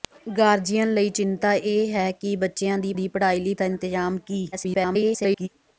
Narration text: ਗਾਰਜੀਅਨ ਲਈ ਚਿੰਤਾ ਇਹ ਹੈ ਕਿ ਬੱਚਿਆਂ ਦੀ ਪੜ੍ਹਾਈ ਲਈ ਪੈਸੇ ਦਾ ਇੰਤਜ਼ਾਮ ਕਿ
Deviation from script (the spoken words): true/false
true